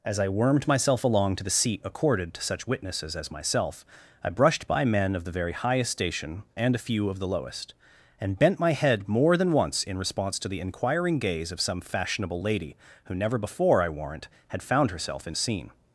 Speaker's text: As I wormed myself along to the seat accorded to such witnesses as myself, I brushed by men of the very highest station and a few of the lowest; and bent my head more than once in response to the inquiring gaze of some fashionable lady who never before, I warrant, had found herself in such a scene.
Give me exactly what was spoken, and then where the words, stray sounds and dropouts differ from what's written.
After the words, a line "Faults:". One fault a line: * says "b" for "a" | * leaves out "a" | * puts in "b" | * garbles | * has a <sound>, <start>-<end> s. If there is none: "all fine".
As I wormed myself along to the seat accorded to such witnesses as myself, I brushed by men of the very highest station and a few of the lowest; and bent my head more than once in response to the inquiring gaze of some fashionable lady who never before, I warrant, had found herself in a scene.
Faults:
* leaves out "such"